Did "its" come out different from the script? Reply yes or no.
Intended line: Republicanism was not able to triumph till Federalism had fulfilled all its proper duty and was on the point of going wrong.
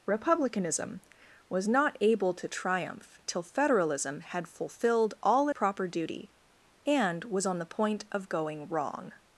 yes